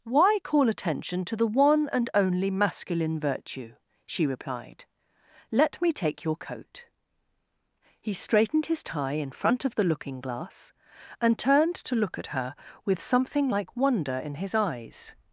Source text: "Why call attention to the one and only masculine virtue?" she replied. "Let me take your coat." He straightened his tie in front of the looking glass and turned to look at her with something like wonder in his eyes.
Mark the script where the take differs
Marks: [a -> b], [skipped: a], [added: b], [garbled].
"Why call attention to the one and only masculine virtue?" she replied. "Let me take your coat." He straightened his tie in front of the looking glass and turned to look at her with something like wonder in his eyes.